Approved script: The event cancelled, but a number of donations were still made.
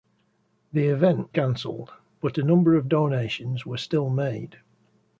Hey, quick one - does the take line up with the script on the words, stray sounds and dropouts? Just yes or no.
yes